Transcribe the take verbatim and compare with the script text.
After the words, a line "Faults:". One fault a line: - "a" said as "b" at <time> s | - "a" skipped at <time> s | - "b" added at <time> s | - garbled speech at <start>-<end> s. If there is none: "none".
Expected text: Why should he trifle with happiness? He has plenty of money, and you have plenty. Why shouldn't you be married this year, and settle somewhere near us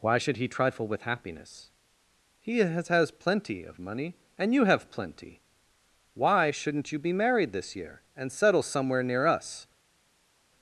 Why should he trifle with happiness? He has has plenty of money, and you have plenty. Why shouldn't you be married this year, and settle somewhere near us
Faults:
- "has" added at 2.9 s